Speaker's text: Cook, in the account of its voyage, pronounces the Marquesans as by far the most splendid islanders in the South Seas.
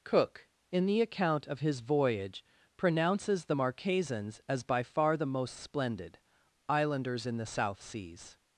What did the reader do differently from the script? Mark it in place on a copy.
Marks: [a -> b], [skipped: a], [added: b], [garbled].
Cook, in the account of [its -> his] voyage, pronounces the Marquesans as by far the most splendid islanders in the South Seas.